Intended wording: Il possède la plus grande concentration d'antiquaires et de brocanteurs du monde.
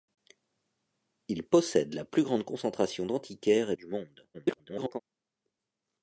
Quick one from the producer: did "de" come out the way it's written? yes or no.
no